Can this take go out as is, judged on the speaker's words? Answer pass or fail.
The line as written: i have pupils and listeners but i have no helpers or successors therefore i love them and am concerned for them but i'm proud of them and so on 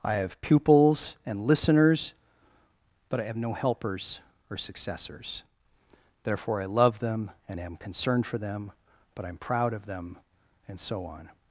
pass